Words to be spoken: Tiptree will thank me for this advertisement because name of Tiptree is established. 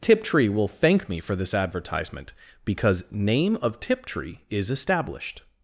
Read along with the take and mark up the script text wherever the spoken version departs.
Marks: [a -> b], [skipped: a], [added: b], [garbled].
Tiptree will thank me for this advertisement because name of Tiptree is established.